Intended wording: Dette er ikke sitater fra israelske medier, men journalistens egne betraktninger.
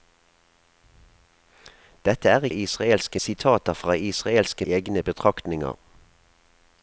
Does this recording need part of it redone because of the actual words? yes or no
yes